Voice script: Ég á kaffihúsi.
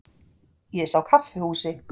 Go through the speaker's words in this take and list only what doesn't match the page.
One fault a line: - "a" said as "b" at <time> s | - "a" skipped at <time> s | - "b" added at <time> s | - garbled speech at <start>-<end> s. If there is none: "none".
none